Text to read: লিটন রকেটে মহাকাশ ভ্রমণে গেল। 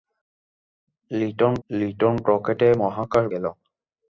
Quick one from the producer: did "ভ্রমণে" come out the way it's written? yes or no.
no